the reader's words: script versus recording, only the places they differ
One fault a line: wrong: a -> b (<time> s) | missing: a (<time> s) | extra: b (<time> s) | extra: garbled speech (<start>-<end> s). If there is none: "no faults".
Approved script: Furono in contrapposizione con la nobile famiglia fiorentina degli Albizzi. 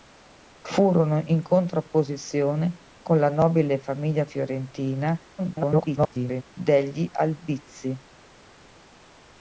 extra: garbled speech (5.4-6.4 s)